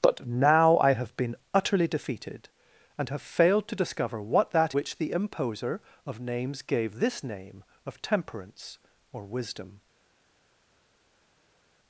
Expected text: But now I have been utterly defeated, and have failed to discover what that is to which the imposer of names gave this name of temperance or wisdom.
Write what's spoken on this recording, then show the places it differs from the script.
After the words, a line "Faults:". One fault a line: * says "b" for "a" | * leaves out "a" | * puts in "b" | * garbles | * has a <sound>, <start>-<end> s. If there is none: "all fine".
But now I have been utterly defeated, and have failed to discover what that which the imposer of names gave this name of temperance or wisdom.
Faults:
* leaves out "is to"